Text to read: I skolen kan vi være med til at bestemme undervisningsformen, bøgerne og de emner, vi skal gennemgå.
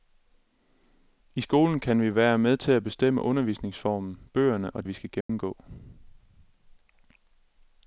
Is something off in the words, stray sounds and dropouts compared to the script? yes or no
yes